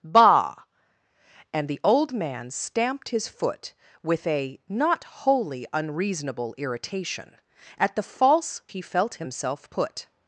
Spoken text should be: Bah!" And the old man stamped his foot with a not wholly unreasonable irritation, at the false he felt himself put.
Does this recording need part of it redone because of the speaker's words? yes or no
no